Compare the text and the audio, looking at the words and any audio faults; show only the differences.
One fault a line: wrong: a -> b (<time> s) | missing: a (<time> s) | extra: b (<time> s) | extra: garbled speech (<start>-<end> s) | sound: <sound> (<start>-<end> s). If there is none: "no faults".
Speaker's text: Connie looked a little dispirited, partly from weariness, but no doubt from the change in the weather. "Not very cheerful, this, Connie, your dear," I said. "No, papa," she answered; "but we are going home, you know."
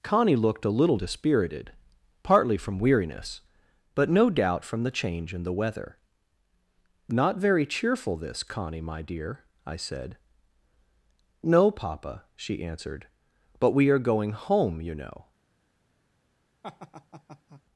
wrong: your -> my (8.8 s)
sound: laugh (16.6-17.6 s)